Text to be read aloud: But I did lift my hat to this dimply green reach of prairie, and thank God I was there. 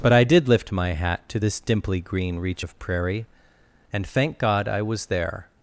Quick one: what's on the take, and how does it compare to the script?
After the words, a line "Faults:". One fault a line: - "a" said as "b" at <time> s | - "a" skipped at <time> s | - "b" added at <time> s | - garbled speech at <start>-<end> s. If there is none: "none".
But I did lift my hat to this dimply green reach of prairie, and thank God I was there.
Faults:
none